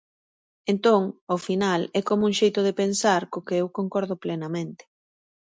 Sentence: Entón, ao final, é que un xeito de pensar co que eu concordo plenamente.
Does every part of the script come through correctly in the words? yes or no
no